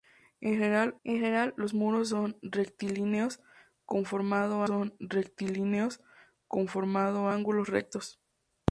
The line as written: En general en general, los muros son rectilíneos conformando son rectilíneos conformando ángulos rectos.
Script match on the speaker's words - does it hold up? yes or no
yes